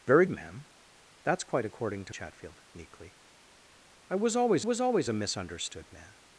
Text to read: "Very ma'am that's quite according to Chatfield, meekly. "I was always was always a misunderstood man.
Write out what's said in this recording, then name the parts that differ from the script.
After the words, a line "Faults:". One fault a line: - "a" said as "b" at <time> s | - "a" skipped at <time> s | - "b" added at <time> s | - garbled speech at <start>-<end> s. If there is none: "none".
"Very ma'am that's quite according to Chatfield, meekly. "I was always was always a misunderstood man.
Faults:
none